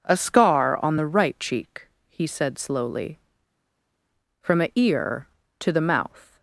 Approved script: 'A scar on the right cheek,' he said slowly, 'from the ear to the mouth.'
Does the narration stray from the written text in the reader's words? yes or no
yes